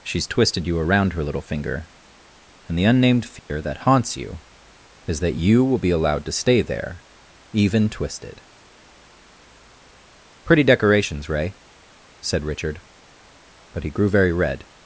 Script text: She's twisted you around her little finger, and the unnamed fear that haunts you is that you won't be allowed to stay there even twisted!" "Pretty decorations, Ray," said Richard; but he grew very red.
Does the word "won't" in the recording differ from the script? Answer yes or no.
yes